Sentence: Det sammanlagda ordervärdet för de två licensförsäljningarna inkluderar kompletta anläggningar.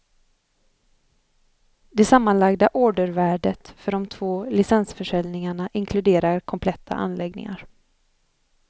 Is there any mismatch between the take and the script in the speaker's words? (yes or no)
no